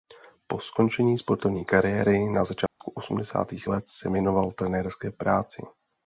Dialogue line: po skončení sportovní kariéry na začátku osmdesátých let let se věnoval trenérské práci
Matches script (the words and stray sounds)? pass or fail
fail